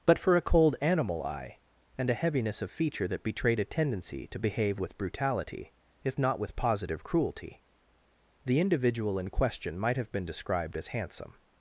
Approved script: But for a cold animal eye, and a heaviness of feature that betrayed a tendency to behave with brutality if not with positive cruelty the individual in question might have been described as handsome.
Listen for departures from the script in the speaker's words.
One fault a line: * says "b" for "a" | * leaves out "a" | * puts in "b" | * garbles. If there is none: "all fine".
all fine